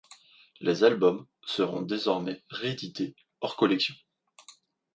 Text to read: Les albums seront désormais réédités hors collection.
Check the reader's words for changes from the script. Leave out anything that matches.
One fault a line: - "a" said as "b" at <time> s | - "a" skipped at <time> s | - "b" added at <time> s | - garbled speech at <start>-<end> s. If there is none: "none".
none